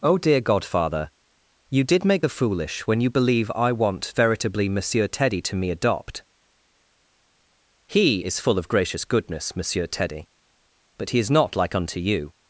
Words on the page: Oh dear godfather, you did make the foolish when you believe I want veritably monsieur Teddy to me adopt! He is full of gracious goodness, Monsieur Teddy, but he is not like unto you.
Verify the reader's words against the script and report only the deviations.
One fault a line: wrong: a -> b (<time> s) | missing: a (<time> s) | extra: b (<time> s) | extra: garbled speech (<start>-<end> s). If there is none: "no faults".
no faults